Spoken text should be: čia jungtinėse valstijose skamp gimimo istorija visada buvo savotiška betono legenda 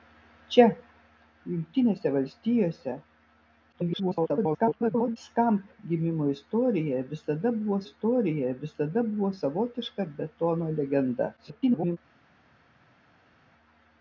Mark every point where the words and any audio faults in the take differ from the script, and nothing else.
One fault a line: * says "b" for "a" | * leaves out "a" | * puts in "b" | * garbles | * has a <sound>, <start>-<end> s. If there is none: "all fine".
* garbles
* puts in "istorija visada buvo"
* garbles